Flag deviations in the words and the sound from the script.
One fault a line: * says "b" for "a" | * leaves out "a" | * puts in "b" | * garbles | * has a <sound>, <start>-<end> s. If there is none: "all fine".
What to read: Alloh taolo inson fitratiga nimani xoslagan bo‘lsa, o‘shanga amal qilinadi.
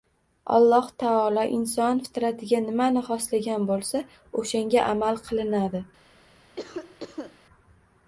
* has a cough, 6.6-7.4 s